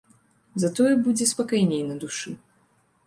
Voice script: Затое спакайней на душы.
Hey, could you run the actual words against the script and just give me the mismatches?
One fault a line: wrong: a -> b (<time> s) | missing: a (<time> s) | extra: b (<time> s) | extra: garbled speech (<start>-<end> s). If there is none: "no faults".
extra: будзе (1.1 s)